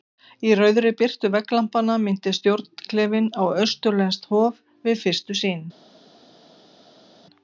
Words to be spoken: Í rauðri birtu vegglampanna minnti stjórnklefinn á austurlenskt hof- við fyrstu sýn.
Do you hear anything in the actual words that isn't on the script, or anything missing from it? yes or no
no